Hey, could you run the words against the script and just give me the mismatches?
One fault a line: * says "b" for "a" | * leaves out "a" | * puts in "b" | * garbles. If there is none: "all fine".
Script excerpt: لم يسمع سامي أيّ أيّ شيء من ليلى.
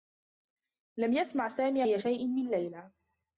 * leaves out "أيّ"